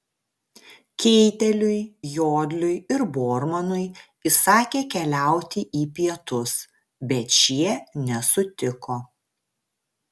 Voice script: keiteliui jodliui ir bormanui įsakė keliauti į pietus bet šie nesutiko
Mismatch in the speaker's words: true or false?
false